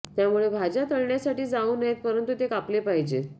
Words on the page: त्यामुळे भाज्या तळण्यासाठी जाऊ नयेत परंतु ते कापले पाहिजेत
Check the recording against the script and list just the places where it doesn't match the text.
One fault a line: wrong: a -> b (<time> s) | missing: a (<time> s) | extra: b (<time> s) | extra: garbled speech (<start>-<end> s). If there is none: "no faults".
no faults